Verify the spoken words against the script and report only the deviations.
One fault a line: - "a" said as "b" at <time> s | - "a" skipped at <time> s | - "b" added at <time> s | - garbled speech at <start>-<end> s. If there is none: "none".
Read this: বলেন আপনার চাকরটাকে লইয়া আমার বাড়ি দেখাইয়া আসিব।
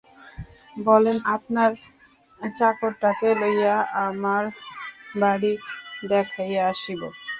none